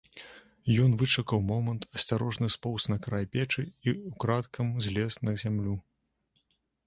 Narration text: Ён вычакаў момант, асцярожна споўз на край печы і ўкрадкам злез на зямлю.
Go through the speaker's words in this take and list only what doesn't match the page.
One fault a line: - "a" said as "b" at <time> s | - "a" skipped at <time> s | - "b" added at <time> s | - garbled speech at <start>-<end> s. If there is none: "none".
none